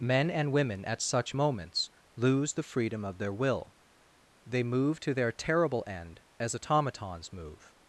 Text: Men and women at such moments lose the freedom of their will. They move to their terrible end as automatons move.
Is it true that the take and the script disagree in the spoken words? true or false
false